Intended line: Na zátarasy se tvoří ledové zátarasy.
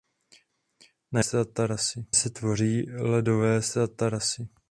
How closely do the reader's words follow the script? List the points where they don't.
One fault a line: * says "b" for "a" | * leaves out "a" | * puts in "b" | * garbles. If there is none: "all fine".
all fine